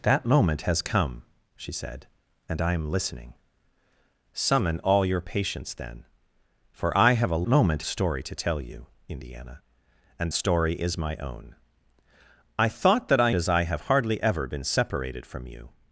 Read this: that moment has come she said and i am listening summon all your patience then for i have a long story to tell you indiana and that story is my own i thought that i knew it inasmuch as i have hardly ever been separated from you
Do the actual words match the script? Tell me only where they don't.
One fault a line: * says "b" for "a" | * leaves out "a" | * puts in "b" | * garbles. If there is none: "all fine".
* says "moment" for "long"
* leaves out "that"
* leaves out "knew it inasmuch"